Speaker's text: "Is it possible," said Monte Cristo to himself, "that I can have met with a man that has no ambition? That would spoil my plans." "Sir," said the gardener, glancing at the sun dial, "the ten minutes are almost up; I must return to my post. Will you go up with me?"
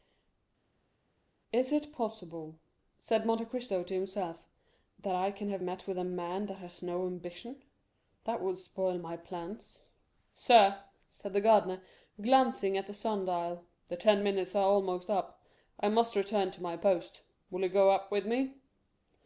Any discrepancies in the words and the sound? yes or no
no